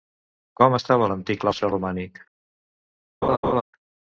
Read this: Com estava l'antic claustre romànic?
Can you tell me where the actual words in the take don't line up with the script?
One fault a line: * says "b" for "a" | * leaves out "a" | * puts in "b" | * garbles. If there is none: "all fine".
all fine